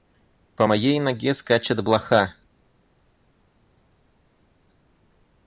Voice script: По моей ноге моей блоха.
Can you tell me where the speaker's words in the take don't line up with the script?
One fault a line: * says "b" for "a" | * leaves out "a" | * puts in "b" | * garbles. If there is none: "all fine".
* says "скачет" for "моей"